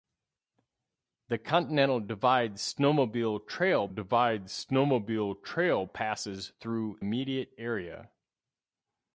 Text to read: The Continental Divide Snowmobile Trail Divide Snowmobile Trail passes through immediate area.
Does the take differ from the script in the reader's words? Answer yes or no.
no